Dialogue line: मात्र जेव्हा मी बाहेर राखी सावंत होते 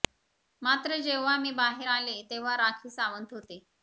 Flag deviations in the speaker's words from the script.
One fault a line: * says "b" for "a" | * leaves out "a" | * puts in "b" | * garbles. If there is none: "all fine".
* puts in "आले तेव्हा"